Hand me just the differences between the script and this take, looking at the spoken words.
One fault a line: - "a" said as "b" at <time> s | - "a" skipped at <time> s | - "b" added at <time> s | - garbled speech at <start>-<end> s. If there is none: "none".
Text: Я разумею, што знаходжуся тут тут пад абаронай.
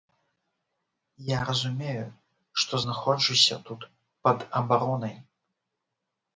- "тут" skipped at 3.8 s